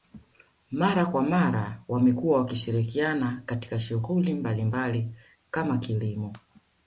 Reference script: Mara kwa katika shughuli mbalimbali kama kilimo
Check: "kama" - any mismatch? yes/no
no